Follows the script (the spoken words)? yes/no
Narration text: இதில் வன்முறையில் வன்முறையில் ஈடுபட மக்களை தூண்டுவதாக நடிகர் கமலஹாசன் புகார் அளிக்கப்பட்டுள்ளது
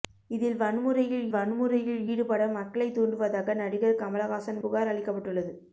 yes